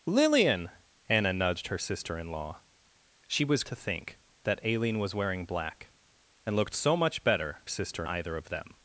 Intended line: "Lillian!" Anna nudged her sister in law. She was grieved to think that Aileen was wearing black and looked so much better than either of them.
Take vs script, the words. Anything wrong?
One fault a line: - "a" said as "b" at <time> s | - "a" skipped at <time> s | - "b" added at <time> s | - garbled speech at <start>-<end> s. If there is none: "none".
- "grieved" skipped at 3.6 s
- "than" said as "sister" at 7.7 s